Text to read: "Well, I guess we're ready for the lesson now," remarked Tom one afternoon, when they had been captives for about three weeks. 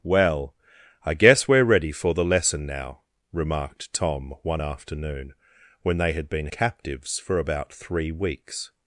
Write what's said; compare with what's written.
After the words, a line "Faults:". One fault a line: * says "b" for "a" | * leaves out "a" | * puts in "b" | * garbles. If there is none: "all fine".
"Well, I guess we're ready for the lesson now," remarked Tom one afternoon, when they had been captives for about three weeks.
Faults:
all fine